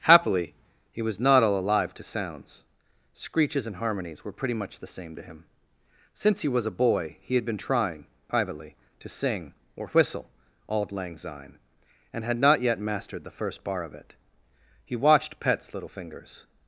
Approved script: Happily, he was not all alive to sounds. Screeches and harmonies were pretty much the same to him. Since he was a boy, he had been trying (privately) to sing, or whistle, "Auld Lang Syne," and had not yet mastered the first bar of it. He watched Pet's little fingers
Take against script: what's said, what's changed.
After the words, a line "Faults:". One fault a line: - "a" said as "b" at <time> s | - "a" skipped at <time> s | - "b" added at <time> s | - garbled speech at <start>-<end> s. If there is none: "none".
Happily, he was not all alive to sounds. Screeches and harmonies were pretty much the same to him. Since he was a boy, he had been trying (privately) to sing, or whistle, "Auld Lang Syne," and had not yet mastered the first bar of it. He watched Pet's little fingers
Faults:
none